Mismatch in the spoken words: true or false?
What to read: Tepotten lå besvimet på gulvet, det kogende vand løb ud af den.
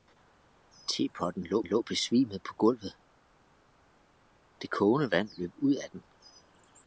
true